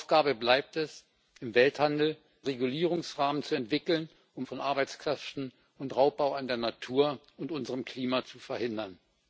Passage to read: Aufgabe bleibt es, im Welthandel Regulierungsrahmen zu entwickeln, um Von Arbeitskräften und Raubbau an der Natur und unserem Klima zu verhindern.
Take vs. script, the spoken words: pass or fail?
pass